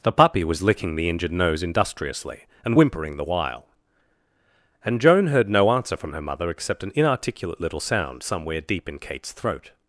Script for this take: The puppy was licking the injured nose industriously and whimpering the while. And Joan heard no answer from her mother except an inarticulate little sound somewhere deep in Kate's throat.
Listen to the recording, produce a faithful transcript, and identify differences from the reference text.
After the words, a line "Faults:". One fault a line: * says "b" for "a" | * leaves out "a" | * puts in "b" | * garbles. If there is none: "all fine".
The puppy was licking the injured nose industriously and whimpering the while. And Joan heard no answer from her mother except an inarticulate little sound somewhere deep in Kate's throat.
Faults:
all fine